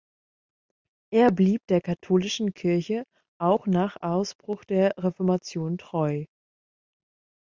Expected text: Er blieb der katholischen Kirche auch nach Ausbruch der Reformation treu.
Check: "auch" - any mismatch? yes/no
no